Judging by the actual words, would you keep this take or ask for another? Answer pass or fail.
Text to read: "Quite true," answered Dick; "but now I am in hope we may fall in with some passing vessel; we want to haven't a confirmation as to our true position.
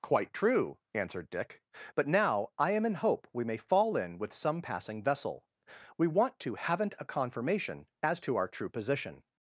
pass